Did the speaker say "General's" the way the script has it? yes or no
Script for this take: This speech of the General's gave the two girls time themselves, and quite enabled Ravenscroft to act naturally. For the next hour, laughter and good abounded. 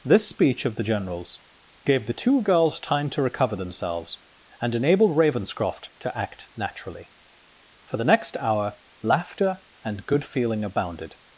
yes